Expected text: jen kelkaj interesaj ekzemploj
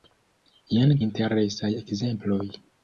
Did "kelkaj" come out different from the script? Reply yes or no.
yes